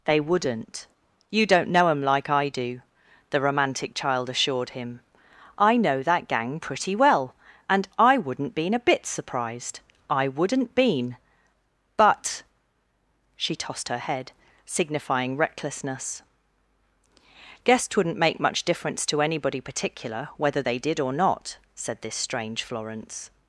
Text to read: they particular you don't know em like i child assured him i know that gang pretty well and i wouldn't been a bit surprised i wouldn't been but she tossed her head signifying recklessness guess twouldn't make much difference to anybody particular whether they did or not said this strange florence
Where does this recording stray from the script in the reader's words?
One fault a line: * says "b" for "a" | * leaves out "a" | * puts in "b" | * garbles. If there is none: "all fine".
* says "wouldn't" for "particular"
* puts in "do the romantic"